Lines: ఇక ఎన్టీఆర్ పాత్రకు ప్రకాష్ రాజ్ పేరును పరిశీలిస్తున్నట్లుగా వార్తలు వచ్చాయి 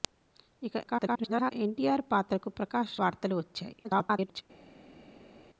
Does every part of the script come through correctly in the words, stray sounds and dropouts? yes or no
no